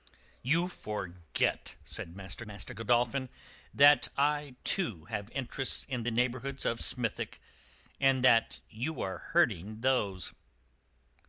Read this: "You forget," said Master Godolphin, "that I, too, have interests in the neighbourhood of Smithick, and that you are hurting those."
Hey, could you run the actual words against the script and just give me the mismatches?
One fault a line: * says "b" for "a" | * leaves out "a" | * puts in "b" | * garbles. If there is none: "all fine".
* puts in "Master"